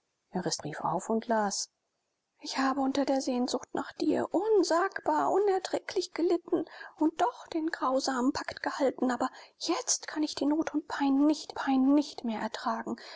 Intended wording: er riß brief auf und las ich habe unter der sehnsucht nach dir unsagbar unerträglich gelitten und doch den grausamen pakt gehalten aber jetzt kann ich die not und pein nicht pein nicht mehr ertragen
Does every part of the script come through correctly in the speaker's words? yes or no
yes